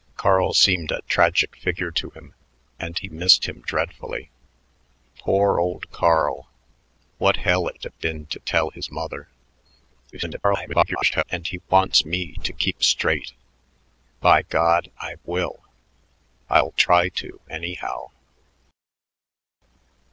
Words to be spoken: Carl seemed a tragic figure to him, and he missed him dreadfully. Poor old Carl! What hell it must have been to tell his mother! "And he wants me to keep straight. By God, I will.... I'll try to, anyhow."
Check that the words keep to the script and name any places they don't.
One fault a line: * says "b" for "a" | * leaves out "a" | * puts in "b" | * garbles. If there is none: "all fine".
* leaves out "must"
* garbles